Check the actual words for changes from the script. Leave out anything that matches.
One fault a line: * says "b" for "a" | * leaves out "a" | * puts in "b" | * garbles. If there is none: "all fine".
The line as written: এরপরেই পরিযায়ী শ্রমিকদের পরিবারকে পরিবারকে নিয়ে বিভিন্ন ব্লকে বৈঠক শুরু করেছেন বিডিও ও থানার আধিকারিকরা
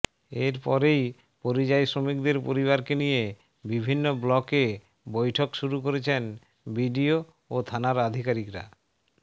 * leaves out "পরিবারকে"